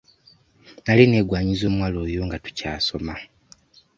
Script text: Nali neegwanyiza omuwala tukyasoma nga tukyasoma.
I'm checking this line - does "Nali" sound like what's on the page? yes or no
yes